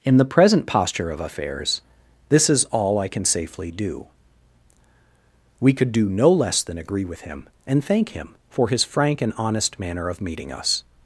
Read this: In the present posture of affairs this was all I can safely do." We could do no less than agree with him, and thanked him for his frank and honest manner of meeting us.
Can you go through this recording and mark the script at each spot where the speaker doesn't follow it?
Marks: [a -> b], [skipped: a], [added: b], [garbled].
In the present posture of affairs this [was -> is] all I can safely do." We could do no less than agree with him, and [thanked -> thank] him for his frank and honest manner of meeting us.